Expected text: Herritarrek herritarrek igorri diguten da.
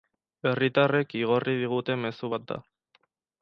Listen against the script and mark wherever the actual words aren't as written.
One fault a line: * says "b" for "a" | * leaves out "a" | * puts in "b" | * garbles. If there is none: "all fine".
* leaves out "herritarrek"
* puts in "mezu bat"